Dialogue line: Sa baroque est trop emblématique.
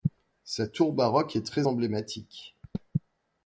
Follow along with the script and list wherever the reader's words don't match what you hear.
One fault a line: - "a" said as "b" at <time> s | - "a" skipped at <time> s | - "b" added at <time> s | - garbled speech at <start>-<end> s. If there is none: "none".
- "tour" added at 0.7 s
- "trop" said as "très" at 1.5 s